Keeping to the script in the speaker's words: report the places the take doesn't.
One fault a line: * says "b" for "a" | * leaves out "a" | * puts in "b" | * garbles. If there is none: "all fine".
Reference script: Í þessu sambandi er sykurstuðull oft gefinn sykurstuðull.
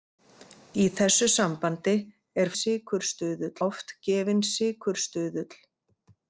all fine